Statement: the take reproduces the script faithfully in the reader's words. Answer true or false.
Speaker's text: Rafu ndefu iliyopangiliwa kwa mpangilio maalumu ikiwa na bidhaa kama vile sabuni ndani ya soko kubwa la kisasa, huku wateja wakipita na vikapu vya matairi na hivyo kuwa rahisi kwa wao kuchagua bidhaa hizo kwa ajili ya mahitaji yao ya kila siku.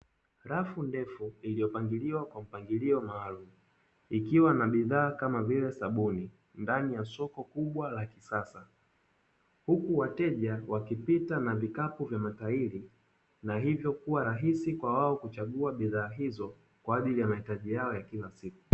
true